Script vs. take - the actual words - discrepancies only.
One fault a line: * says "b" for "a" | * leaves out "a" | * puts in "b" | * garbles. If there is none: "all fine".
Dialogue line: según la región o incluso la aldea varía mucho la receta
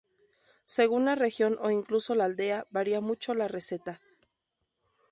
all fine